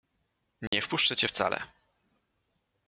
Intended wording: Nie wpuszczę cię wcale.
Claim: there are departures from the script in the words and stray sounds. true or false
true